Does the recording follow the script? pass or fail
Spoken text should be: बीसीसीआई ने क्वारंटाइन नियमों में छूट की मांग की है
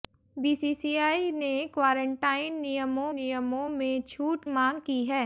fail